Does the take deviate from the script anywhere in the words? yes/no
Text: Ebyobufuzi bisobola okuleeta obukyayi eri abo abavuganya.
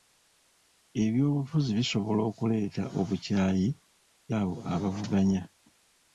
yes